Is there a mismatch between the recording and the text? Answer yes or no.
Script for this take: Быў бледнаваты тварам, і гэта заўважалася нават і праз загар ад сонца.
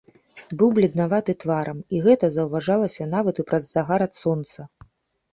no